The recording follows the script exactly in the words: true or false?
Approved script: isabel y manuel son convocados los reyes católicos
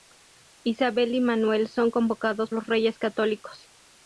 true